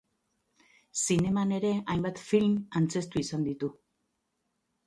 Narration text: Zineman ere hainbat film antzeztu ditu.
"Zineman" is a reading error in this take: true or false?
false